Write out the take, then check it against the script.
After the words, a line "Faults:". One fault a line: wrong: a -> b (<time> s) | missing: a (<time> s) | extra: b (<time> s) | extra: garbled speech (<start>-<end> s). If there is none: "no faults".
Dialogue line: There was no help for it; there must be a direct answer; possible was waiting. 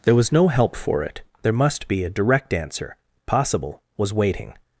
There was no help for it; there must be a direct answer; possible was waiting.
Faults:
no faults